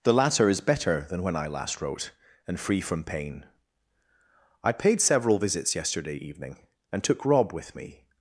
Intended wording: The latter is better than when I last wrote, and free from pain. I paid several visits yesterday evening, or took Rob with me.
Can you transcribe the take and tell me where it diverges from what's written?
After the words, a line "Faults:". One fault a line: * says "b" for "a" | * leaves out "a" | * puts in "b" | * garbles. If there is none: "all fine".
The latter is better than when I last wrote, and free from pain. I paid several visits yesterday evening, and took Rob with me.
Faults:
* says "and" for "or"